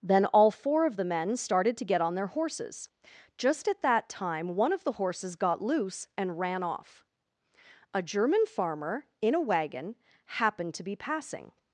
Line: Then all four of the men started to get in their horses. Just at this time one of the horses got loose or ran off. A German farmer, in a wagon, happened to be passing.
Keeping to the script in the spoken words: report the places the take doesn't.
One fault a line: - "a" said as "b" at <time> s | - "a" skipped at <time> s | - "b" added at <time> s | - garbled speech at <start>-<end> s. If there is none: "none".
- "in" said as "on" at 2.0 s
- "this" said as "that" at 3.8 s
- "or" said as "and" at 6.2 s